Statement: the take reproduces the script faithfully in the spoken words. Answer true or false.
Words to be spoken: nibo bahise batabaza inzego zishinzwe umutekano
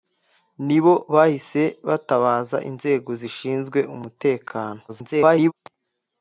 false